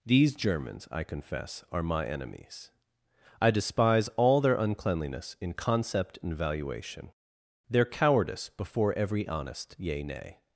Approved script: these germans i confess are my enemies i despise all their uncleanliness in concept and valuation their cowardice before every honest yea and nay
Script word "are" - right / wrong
right